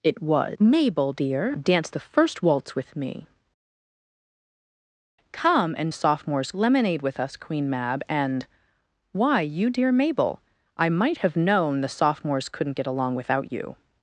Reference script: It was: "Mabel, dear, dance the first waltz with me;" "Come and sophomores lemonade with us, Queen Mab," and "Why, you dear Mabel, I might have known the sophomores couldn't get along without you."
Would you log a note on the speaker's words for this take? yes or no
no